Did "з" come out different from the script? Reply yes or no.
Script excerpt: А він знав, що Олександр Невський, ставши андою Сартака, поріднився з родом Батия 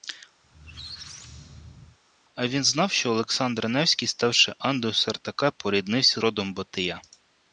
yes